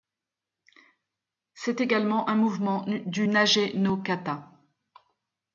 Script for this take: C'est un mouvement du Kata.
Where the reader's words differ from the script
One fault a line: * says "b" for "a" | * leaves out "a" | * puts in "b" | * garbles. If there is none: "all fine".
* puts in "également"
* puts in "Nage no"